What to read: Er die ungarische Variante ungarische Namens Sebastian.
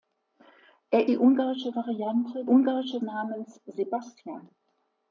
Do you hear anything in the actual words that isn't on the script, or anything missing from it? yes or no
no